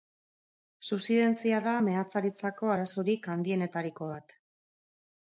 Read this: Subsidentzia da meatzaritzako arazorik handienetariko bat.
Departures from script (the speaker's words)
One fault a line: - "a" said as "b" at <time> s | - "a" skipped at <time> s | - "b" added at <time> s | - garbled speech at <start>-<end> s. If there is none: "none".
none